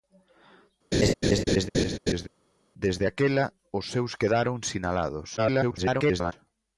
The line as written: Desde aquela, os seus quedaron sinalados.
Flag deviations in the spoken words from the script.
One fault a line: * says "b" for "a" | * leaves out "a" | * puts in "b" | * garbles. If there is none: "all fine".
* garbles